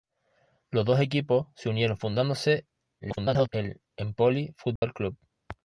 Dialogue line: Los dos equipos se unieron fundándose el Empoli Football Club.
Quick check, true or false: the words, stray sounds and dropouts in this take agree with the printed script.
false